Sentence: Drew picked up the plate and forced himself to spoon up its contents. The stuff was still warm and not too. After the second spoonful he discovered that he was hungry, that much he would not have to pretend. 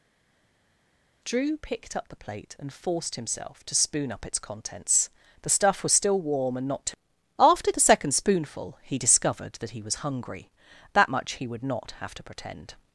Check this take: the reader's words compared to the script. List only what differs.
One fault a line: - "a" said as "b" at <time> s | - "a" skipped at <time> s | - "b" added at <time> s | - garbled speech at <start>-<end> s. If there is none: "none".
none